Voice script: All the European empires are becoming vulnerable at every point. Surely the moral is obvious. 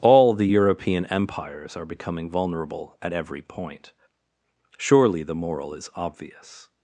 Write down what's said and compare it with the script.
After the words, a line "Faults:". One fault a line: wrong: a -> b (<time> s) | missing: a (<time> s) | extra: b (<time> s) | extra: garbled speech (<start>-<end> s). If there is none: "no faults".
All the European empires are becoming vulnerable at every point. Surely the moral is obvious.
Faults:
no faults